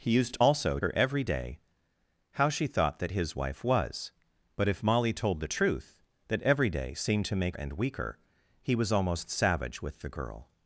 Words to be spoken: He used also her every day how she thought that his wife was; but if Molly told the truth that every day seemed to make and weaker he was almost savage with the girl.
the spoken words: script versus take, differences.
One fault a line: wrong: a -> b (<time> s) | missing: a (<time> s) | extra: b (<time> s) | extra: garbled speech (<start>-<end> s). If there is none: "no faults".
no faults